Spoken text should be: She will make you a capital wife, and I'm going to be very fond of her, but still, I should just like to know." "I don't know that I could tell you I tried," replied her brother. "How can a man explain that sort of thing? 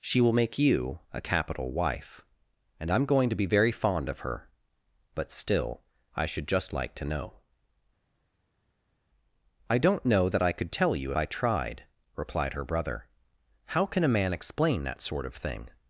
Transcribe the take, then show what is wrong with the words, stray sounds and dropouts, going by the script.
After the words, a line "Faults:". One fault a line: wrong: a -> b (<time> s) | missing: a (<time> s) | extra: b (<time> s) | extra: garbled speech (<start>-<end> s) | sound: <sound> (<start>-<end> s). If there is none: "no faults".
She will make you a capital wife, and I'm going to be very fond of her, but still, I should just like to know." "I don't know that I could tell you I tried," replied her brother. "How can a man explain that sort of thing?
Faults:
no faults